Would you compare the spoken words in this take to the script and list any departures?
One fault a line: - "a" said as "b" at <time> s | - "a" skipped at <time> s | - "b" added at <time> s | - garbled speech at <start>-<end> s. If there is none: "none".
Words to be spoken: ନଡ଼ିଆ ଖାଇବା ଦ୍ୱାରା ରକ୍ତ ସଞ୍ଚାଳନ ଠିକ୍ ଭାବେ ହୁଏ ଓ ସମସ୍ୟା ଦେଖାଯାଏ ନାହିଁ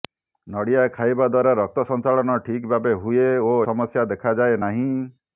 none